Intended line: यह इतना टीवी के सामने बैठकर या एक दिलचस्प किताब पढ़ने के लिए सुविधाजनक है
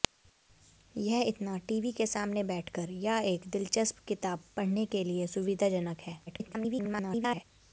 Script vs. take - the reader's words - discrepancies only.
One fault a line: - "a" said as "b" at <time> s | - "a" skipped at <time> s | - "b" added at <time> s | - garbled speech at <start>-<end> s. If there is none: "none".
- garbled speech at 6.3-7.4 s